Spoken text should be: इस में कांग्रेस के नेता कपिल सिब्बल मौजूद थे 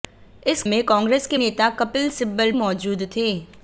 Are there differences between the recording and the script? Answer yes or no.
no